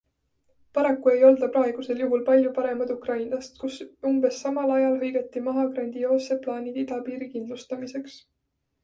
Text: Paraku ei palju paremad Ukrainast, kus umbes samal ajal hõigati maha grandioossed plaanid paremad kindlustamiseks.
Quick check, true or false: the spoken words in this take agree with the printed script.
false